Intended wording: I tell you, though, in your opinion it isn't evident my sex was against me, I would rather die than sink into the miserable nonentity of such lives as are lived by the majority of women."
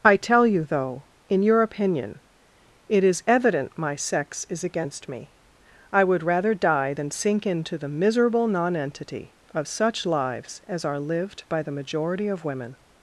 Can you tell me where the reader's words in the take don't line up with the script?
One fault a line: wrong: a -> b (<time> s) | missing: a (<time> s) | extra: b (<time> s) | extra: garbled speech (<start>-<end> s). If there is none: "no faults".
wrong: isn't -> is (3.0 s)
wrong: was -> is (4.5 s)